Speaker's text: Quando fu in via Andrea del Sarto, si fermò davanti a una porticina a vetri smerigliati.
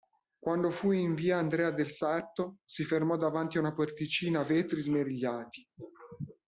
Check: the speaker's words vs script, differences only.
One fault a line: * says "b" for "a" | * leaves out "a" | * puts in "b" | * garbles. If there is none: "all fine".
all fine